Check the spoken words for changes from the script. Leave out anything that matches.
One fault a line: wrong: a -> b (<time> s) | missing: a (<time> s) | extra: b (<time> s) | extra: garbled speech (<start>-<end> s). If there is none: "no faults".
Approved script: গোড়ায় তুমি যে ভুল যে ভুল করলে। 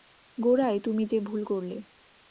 missing: যে ভুল (1.4 s)